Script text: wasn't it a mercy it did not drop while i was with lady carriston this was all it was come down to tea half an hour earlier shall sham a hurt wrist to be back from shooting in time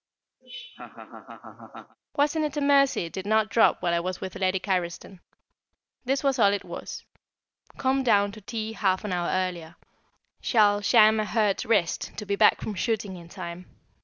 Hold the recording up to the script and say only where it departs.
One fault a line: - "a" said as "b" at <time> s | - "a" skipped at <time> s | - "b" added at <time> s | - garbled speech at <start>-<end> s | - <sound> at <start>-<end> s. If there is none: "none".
- laugh at 0.4-2.0 s